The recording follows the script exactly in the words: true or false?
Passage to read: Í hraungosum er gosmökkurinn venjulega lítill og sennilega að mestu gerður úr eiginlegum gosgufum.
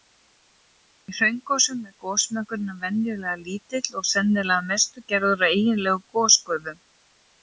true